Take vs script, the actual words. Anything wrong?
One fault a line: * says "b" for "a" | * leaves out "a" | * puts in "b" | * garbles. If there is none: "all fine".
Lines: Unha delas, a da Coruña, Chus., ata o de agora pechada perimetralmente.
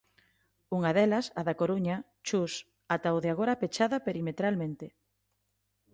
all fine